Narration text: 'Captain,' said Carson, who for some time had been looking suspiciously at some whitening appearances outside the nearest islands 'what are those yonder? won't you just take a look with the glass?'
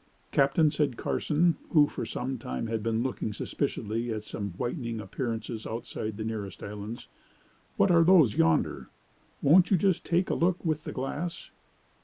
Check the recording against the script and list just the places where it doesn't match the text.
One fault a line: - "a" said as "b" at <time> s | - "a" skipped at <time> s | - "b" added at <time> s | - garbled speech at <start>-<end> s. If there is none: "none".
none